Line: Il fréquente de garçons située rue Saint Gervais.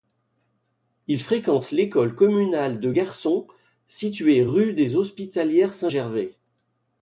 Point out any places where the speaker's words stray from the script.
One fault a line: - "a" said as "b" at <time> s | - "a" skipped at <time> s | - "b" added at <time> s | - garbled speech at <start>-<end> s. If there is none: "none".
- "l'école communale" added at 1.7 s
- "des Hospitalières" added at 4.7 s